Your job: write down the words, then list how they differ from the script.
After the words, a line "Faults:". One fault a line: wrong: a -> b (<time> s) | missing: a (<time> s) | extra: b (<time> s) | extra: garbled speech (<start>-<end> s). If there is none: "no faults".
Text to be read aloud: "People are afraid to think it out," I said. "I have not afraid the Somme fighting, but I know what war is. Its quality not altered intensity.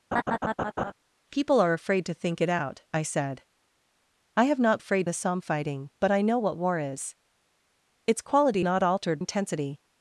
"People are afraid to think it out," I said. "I have not afraid the Somme fighting, but I know what war is. Its quality not altered intensity.
Faults:
no faults